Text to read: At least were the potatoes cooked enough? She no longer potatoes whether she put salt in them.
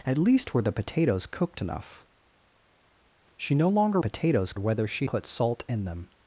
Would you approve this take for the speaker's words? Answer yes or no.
yes